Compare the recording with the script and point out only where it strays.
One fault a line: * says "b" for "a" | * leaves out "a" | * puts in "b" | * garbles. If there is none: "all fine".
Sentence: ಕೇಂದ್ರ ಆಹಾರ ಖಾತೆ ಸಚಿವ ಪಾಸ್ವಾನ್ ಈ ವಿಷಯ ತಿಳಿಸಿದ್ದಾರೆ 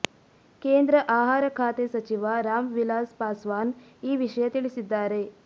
* puts in "ರಾಮ್ ವಿಲಾಸ್"